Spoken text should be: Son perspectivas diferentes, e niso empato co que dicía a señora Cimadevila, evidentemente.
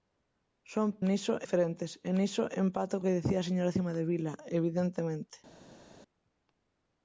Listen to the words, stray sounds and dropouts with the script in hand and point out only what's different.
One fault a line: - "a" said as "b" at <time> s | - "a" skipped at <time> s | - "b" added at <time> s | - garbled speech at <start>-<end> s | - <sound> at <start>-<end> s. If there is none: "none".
- "perspectivas" said as "niso" at 1.1 s
- "co" skipped at 3.0 s